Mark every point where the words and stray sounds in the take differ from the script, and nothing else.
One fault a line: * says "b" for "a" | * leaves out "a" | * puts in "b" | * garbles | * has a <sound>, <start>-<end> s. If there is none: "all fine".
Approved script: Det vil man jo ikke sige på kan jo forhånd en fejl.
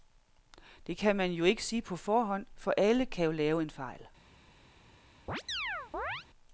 * says "kan" for "vil"
* puts in "forhånd for alle"
* says "lave" for "forhånd"
* has a chirp, 5.3-6.3 s